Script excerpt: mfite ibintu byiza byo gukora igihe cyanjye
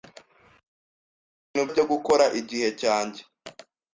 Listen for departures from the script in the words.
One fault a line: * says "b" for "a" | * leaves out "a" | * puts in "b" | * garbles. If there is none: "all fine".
* leaves out "byiza"